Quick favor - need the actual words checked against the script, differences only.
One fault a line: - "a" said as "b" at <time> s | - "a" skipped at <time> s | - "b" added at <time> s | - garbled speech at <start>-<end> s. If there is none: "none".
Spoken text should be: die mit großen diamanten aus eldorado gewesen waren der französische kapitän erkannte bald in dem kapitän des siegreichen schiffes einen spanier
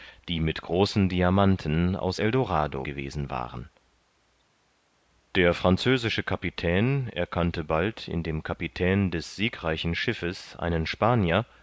none